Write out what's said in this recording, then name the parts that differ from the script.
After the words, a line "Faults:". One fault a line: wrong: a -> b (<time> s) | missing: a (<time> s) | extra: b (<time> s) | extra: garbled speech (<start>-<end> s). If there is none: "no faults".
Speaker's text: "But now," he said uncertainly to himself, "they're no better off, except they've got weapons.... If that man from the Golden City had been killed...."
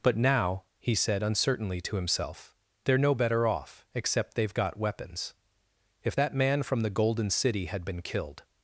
"But now," he said uncertainly to himself, "they're no better off, except they've got weapons.... If that man from the Golden City had been killed...."
Faults:
no faults